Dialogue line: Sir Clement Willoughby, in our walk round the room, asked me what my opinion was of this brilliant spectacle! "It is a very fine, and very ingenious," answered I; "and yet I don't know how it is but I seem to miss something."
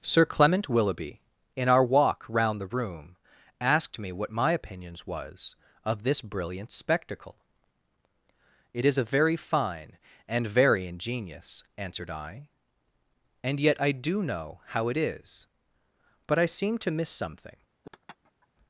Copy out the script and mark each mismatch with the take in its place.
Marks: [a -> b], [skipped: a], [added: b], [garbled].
Sir Clement Willoughby, in our walk round the room, asked me what my [opinion -> opinions] was of this brilliant spectacle! "It is a very fine, and very ingenious," answered I; "and yet I [don't -> do] know how it is but I seem to miss something."